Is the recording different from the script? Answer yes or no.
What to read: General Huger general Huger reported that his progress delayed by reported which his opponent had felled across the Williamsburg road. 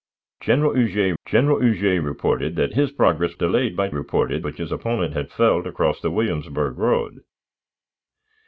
no